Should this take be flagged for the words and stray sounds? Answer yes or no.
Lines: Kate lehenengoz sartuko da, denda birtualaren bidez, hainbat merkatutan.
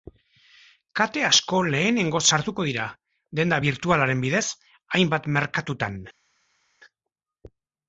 yes